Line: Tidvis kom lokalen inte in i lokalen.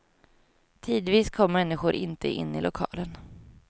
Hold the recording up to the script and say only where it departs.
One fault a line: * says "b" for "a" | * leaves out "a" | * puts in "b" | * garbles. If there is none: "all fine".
* says "människor" for "lokalen"